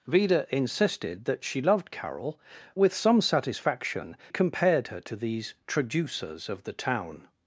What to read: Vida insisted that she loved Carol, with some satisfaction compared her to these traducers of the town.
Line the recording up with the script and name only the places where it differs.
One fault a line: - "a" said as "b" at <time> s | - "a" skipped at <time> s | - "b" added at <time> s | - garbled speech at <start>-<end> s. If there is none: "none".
none